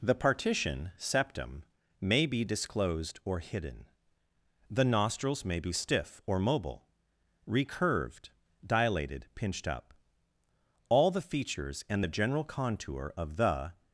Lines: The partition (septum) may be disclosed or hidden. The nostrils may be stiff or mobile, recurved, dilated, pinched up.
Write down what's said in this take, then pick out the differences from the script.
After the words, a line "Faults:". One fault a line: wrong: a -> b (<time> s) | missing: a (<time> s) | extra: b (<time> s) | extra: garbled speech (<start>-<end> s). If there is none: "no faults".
The partition (septum) may be disclosed or hidden. The nostrils may be stiff or mobile, recurved, dilated, pinched up. All the features and the general contour of the
Faults:
extra: All the features and the general contour of the (10.9 s)